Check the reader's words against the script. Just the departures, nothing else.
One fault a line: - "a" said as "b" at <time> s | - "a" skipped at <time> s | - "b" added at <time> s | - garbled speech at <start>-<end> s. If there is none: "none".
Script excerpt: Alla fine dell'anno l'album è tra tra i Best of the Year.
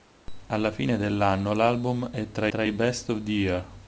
none